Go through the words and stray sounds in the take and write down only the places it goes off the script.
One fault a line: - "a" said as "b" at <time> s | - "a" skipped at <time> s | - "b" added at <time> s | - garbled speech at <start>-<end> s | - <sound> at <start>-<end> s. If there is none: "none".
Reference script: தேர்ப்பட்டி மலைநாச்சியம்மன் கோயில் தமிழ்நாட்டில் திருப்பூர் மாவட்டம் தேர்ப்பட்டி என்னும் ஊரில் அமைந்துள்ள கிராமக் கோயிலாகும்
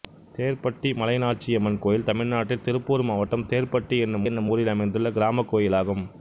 - "என்னும்" added at 4.2 s